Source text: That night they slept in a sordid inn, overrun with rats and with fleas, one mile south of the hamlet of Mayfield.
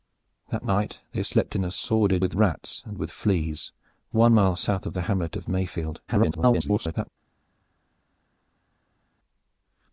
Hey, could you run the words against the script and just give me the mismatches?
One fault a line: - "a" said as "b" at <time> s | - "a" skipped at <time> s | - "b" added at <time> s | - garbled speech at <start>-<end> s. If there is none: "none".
- "inn overrun" skipped at 2.2 s
- garbled speech at 6.1-7.1 s